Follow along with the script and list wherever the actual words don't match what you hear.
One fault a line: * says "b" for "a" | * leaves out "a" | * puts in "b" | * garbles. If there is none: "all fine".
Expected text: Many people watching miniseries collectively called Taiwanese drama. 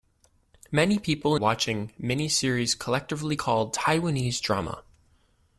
all fine